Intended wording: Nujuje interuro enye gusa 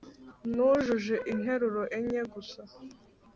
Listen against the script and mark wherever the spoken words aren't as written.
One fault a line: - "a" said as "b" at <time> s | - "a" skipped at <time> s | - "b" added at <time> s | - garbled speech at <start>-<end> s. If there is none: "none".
none